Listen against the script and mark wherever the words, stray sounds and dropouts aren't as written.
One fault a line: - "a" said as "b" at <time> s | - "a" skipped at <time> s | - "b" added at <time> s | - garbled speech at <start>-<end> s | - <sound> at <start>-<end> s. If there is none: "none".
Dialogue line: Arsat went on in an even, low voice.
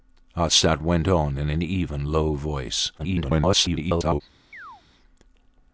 - garbled speech at 3.0-4.2 s
- chirp at 4.5-4.8 s